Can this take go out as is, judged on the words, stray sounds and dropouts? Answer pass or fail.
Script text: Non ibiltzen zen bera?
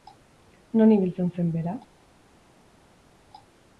pass